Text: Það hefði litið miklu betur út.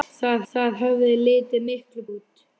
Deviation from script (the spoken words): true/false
true